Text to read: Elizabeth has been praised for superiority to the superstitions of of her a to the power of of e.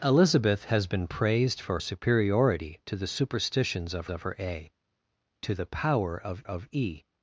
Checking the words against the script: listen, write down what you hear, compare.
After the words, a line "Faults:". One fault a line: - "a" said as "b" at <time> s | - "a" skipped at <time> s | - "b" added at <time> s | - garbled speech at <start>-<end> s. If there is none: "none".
Elizabeth has been praised for superiority to the superstitions of of her a to the power of of e.
Faults:
none